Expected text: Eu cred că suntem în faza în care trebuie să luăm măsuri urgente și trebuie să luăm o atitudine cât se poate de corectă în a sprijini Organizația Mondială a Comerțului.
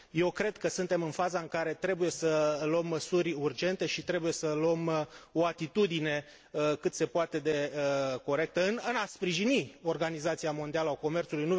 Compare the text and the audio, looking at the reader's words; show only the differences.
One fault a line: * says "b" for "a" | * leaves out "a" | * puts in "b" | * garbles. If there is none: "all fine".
all fine